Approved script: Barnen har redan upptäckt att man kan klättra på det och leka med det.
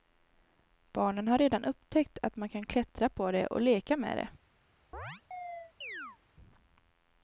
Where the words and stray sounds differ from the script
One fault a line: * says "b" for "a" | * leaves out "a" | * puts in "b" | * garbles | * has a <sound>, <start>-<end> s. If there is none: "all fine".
* has a chirp, 4.9-6.2 s